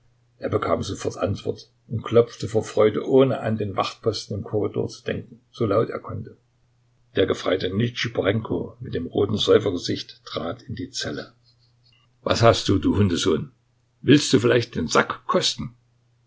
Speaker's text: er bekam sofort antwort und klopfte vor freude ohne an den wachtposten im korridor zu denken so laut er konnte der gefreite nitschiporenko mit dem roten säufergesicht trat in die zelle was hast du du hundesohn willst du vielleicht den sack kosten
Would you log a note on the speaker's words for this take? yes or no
no